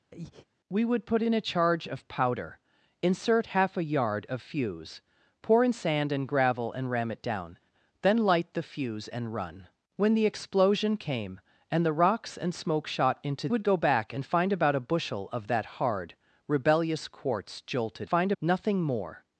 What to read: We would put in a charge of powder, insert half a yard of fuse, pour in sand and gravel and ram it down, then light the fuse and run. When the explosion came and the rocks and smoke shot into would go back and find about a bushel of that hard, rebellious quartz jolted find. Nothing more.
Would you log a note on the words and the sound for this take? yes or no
yes